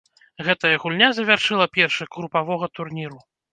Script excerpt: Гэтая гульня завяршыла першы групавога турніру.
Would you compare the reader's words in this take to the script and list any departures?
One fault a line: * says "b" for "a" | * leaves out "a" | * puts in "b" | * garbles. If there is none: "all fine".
all fine